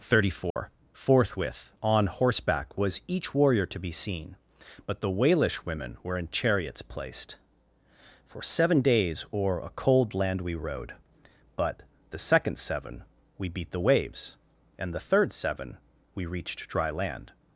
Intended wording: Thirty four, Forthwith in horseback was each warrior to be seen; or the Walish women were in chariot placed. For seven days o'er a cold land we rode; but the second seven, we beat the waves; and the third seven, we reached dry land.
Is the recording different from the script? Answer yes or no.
yes